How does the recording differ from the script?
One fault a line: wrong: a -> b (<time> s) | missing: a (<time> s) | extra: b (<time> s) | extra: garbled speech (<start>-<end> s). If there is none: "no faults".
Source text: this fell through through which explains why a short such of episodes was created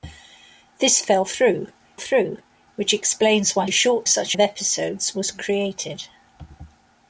no faults